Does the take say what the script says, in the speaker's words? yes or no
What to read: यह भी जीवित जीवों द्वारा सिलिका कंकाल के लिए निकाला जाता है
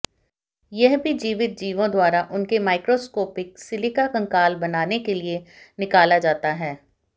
no